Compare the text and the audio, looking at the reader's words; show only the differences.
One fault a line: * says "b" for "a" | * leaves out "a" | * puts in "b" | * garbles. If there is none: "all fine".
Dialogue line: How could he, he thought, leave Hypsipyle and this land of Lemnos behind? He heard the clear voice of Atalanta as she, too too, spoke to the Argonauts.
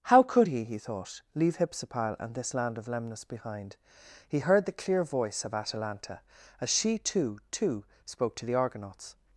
all fine